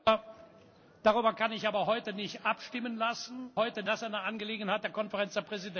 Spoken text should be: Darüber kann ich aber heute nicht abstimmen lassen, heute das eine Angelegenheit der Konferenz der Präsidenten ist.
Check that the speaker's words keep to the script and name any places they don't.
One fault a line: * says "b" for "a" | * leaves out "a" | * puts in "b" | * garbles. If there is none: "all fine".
all fine